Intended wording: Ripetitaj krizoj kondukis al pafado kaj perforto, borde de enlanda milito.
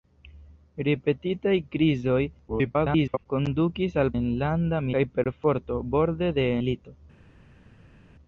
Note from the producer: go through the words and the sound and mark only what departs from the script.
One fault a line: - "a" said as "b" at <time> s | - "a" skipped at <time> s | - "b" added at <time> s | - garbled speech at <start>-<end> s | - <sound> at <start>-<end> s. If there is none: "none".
- garbled speech at 2.5-3.3 s
- "pafado" said as "enlanda" at 4.2 s
- "enlanda" skipped at 6.5 s